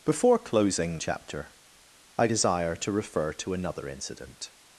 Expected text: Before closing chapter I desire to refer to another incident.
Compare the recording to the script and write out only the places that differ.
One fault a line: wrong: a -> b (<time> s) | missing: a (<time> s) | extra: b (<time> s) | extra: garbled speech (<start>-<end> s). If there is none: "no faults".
no faults